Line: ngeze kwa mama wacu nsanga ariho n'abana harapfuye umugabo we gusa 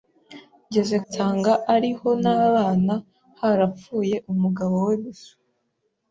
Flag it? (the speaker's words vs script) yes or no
yes